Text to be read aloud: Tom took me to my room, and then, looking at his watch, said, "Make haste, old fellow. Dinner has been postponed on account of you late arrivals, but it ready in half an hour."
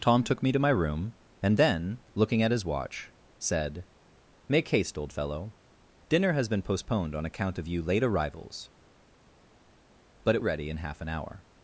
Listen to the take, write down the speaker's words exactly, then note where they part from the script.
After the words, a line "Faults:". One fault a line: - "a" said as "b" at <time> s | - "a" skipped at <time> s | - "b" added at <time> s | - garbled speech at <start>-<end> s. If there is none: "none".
Tom took me to my room, and then, looking at his watch, said, "Make haste, old fellow. Dinner has been postponed on account of you late arrivals, but it ready in half an hour."
Faults:
none